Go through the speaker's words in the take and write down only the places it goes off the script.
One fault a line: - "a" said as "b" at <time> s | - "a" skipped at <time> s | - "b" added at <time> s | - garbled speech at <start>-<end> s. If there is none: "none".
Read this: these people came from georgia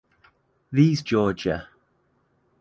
- "people came from" skipped at 1.0 s